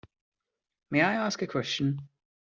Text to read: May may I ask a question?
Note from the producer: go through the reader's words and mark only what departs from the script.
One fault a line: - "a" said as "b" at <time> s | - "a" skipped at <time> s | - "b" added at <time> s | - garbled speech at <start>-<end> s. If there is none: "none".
- "may" skipped at 1.0 s